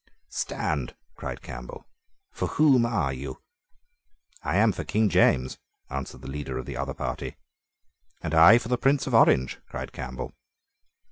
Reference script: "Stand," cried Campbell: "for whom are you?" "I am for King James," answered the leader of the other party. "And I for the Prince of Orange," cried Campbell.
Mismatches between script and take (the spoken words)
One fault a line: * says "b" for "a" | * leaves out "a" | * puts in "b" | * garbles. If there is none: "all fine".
all fine